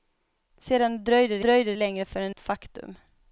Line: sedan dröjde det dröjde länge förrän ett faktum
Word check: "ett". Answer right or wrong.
right